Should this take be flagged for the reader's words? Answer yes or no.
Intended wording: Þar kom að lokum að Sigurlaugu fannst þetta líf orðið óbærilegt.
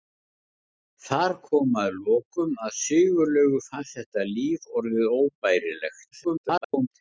yes